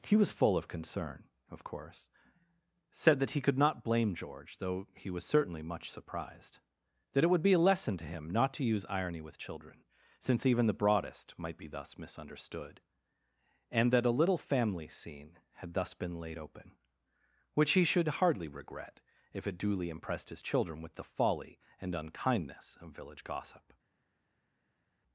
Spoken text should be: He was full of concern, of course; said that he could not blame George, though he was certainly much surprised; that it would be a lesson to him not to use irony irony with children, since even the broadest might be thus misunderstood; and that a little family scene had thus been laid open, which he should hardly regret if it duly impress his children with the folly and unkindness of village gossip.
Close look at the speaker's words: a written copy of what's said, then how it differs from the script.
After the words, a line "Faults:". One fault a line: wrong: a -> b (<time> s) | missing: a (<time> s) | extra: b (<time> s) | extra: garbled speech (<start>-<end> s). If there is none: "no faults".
He was full of concern, of course; said that he could not blame George, though he was certainly much surprised; that it would be a lesson to him not to use irony with children, since even the broadest might be thus misunderstood; and that a little family scene had thus been laid open, which he should hardly regret if it duly impressed his children with the folly and unkindness of village gossip.
Faults:
missing: irony (9.2 s)
wrong: impress -> impressed (19.9 s)